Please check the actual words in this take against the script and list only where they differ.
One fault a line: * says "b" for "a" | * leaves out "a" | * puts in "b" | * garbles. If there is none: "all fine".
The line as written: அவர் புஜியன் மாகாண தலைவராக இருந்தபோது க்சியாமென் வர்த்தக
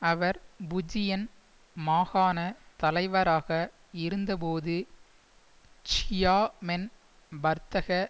all fine